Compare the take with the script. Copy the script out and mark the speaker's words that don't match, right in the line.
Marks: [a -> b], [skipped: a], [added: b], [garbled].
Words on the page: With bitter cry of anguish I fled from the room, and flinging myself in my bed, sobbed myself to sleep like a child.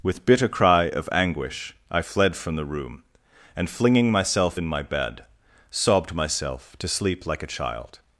With bitter cry of anguish I fled from the room, and flinging myself in my bed, sobbed myself to sleep like a child.